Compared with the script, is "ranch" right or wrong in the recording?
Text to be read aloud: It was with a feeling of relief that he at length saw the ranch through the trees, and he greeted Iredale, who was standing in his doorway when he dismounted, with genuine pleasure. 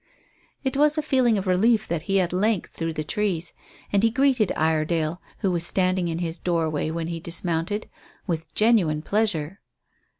wrong